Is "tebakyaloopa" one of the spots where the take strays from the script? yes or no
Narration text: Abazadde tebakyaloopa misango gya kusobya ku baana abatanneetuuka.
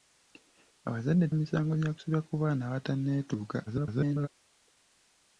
yes